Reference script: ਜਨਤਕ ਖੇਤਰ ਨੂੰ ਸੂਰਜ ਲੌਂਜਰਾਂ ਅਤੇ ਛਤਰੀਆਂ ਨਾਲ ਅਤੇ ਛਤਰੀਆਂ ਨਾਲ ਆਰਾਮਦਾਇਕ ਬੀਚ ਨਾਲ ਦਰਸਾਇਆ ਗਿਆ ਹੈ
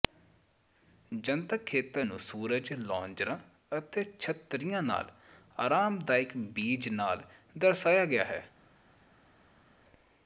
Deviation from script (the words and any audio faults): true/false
true